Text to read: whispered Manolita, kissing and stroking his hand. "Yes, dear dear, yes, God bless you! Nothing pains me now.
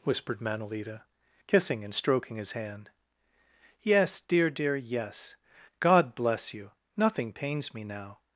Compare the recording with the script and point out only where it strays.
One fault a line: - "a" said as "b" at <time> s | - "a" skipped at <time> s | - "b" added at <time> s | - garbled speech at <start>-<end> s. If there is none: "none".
none